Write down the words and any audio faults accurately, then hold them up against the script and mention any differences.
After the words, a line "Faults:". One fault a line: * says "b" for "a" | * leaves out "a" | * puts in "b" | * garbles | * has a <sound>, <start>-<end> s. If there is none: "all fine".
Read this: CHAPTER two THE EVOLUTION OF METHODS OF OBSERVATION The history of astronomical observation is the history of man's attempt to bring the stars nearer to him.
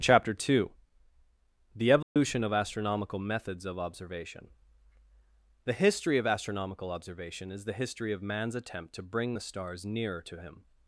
CHAPTER two THE EVOLUTION OF ASTRONOMICAL METHODS OF OBSERVATION The history of astronomical observation is the history of man's attempt to bring the stars nearer to him.
Faults:
* has a dropout, 2.0-2.2 s
* puts in "ASTRONOMICAL"